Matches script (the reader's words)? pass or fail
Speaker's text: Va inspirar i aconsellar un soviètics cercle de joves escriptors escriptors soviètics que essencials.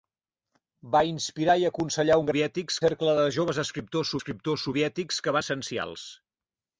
pass